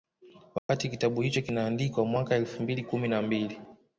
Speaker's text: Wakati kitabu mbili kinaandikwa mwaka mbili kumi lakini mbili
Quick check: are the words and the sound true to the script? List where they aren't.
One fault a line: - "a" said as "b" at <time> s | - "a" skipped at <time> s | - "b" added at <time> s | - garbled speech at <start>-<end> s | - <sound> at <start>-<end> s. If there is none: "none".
- dropout at 0.6-0.7 s
- "mbili" said as "hicho" at 1.2 s
- "elfu" added at 2.4 s
- "lakini" said as "na" at 3.1 s